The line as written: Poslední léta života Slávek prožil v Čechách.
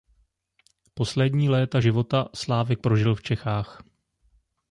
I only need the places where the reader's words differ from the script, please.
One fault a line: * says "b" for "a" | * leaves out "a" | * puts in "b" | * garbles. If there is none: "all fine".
all fine